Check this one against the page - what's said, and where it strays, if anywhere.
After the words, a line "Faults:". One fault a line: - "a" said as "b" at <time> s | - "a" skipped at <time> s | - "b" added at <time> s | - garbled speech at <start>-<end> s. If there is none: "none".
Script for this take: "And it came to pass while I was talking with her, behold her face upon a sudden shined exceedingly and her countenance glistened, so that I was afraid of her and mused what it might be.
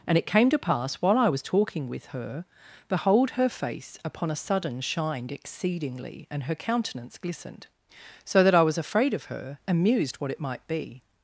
"And it came to pass while I was talking with her, behold her face upon a sudden shined exceedingly and her countenance glistened, so that I was afraid of her and mused what it might be.
Faults:
none